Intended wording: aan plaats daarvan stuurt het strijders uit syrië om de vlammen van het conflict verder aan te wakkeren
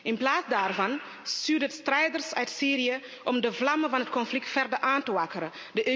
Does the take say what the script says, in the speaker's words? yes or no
no